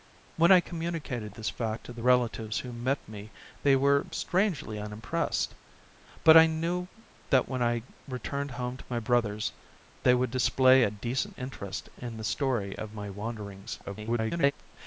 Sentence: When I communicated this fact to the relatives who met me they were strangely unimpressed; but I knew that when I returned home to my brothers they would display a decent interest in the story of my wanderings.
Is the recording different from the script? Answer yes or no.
yes